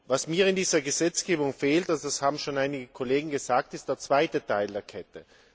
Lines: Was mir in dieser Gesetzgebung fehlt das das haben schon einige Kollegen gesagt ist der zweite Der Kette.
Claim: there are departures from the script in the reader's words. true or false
true